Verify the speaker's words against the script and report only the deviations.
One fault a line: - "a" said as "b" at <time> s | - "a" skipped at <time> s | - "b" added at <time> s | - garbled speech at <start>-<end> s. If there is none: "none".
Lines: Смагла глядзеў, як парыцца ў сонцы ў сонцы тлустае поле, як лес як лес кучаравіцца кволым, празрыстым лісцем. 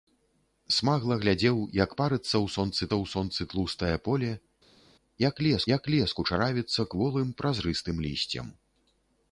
none